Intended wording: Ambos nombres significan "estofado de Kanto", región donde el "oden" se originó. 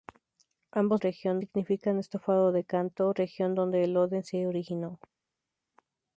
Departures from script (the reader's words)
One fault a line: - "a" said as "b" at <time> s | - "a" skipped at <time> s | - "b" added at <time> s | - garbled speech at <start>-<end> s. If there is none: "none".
- "nombres" said as "región" at 1.0 s